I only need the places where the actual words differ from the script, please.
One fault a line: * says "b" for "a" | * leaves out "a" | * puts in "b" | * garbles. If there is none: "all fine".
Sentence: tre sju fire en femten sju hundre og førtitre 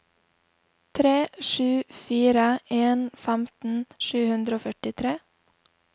all fine